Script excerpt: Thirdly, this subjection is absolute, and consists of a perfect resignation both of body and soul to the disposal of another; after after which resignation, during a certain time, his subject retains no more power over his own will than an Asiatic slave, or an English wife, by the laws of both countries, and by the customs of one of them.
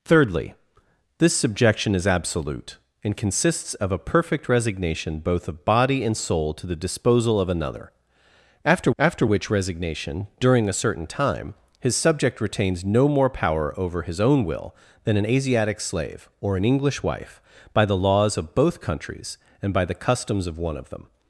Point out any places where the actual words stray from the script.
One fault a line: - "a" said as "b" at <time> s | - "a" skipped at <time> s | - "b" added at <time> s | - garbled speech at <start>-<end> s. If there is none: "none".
none